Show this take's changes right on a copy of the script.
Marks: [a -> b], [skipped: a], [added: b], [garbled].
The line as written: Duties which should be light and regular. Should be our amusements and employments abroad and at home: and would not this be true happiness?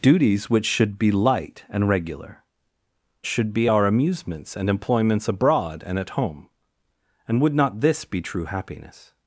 Duties which should be light and regular. Should be our amusements and employments abroad and at home: and would not this be true happiness?